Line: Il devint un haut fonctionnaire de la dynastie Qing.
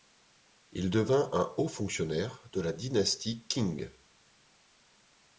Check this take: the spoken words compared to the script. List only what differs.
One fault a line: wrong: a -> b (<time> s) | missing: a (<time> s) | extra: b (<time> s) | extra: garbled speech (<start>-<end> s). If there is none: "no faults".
no faults